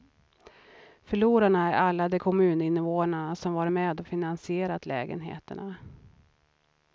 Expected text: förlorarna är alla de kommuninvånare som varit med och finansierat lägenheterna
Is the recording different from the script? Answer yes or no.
no